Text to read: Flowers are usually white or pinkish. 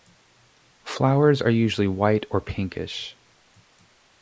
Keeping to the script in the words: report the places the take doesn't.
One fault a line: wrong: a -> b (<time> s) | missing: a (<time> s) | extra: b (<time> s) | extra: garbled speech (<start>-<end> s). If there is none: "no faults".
no faults